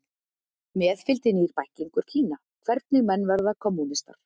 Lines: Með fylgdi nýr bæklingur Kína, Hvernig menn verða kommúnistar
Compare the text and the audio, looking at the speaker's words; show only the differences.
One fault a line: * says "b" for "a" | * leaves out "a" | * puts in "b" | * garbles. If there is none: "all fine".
all fine